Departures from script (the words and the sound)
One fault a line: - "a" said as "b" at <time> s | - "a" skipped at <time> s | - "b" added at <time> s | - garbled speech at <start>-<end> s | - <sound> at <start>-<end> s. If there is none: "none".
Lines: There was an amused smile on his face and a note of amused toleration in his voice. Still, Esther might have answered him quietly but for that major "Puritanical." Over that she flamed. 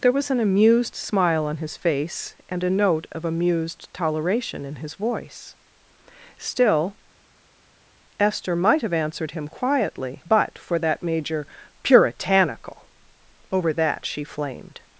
none